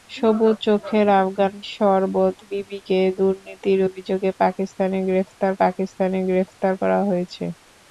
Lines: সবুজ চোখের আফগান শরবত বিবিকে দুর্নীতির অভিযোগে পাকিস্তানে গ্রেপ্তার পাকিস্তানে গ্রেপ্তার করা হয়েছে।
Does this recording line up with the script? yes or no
yes